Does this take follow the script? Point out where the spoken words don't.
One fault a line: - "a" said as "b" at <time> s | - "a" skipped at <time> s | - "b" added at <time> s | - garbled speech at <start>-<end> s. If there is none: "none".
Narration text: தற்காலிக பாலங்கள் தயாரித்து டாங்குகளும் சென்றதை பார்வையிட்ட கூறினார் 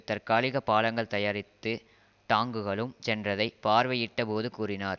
- "போது" added at 4.2 s